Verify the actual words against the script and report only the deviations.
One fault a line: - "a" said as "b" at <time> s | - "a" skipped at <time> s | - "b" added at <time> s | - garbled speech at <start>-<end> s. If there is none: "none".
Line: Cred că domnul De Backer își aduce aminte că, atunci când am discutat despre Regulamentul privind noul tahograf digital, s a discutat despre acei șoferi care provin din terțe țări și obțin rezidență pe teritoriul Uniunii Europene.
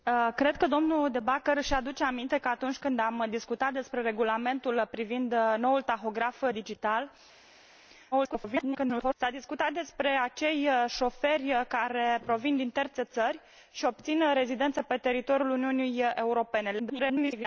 - garbled speech at 8.1-9.1 s
- garbled speech at 16.8-17.5 s